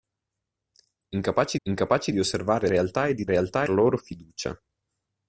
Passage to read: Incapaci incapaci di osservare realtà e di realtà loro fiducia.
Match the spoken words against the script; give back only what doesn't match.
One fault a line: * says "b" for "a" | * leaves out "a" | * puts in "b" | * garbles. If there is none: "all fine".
all fine